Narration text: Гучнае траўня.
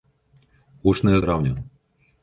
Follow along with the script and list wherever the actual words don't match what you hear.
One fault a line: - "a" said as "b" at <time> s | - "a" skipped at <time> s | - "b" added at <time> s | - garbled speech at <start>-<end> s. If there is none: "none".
none